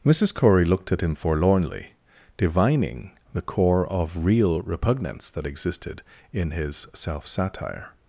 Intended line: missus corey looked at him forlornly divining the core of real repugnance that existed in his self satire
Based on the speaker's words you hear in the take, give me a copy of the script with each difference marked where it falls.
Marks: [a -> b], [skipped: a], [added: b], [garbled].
missus corey looked at him forlornly divining the core of real repugnance that existed in his self satire